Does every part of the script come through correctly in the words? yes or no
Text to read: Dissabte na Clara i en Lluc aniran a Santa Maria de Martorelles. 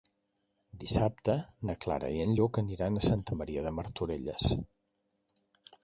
yes